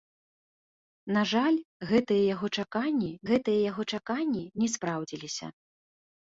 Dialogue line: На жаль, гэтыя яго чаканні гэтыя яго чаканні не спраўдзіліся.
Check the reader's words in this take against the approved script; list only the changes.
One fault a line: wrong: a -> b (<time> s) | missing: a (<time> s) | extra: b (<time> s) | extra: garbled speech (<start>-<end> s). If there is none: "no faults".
no faults